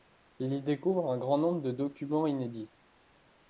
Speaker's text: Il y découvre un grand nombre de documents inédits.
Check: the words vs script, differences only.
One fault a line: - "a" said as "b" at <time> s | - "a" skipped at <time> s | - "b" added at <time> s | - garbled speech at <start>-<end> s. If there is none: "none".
none